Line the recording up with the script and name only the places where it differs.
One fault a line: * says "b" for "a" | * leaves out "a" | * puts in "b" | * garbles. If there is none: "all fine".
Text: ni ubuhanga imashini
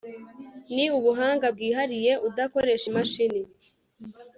* puts in "bwihariye udakoresha"